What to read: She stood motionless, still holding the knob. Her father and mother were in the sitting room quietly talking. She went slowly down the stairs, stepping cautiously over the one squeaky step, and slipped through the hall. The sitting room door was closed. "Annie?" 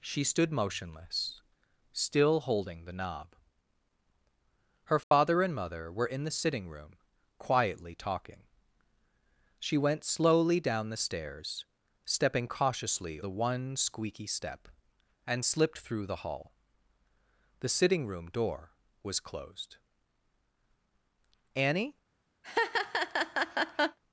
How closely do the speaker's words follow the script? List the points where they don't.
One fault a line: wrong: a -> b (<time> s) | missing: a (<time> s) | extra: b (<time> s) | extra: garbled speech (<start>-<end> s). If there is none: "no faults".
missing: over (13.2 s)